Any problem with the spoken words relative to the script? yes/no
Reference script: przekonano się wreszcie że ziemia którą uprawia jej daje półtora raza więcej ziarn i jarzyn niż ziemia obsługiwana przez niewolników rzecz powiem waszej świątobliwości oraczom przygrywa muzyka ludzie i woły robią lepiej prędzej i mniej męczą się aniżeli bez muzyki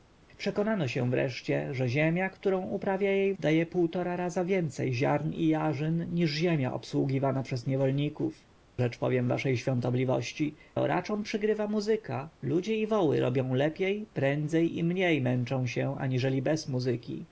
no